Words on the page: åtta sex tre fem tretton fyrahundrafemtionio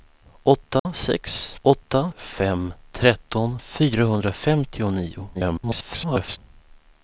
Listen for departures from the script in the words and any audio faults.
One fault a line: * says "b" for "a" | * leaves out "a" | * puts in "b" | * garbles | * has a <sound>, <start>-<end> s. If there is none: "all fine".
* has a dropout, 0.8-0.9 s
* says "åtta" for "tre"
* garbles